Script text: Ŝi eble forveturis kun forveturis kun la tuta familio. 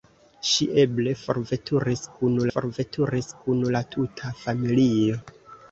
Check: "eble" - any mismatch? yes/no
no